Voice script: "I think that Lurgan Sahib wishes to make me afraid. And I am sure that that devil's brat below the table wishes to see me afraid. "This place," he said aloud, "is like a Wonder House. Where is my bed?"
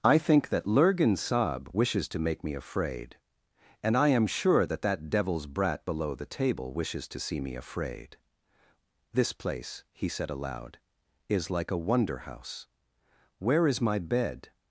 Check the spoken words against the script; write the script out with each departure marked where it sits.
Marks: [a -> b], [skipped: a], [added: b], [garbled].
"I think that Lurgan Sahib wishes to make me afraid. And I am sure that that devil's brat below the table wishes to see me afraid. "This place," he said aloud, "is like a Wonder House. Where is my bed?"